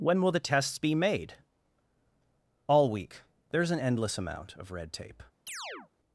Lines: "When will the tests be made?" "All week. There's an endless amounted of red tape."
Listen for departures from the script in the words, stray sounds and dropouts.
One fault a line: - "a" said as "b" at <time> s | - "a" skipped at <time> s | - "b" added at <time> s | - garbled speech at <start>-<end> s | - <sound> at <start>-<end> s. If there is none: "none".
- "amounted" said as "amount" at 4.2 s
- chirp at 5.5-5.9 s